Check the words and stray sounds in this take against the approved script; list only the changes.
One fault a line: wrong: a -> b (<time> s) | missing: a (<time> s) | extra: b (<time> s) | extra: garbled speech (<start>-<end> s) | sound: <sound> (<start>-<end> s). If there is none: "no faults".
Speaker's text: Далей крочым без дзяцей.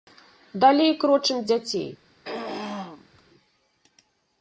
missing: без (1.4 s)
sound: throat clearing (2.2-3.2 s)